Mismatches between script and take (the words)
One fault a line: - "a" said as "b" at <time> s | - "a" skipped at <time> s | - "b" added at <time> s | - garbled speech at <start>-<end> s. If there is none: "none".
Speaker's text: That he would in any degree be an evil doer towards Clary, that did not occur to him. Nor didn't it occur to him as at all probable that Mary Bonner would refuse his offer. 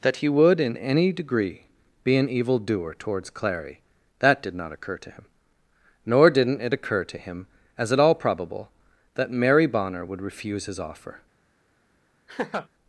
none